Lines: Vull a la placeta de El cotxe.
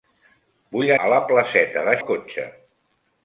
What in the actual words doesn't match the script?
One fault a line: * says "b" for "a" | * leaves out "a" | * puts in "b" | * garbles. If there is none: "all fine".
all fine